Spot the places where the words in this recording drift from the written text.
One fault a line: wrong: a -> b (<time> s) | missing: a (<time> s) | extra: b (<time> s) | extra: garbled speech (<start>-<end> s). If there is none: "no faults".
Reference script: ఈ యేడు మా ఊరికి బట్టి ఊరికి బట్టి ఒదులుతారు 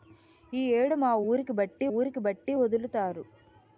no faults